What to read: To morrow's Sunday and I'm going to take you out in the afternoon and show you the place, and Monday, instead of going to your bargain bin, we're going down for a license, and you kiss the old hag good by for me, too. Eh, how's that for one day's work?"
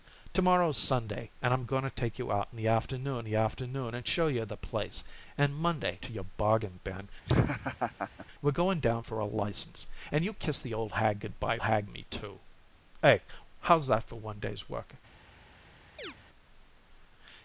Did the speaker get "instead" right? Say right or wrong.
wrong